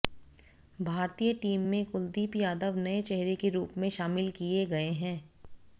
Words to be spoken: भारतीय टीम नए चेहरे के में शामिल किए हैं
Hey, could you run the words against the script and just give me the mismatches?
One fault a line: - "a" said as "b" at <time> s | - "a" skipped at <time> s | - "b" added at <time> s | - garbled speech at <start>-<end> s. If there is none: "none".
- "में कुलदीप यादव" added at 1.7 s
- "रूप" added at 3.5 s
- "गए" added at 4.7 s